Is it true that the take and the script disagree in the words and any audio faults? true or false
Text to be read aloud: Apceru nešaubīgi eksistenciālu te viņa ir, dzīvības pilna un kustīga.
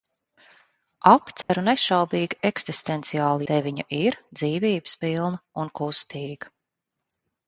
true